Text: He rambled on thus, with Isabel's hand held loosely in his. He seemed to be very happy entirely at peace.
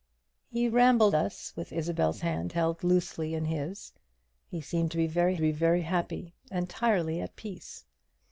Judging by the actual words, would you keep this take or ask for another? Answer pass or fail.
fail